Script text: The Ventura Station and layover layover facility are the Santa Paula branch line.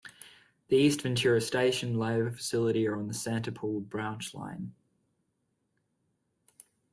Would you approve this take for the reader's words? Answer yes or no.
no